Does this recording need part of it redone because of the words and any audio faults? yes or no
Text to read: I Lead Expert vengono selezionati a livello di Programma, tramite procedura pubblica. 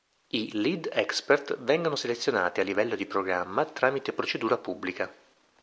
no